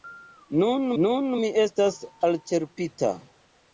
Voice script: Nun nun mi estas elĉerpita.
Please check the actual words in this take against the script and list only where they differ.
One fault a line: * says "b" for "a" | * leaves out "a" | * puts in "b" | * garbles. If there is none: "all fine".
all fine